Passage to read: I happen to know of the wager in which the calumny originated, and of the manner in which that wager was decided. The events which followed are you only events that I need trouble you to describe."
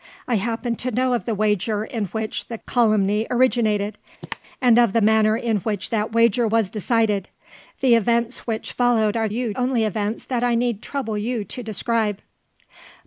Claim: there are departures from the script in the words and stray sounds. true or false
true